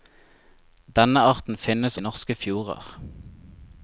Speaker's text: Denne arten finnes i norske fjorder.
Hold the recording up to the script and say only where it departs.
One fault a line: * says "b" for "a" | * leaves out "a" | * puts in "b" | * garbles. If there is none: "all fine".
all fine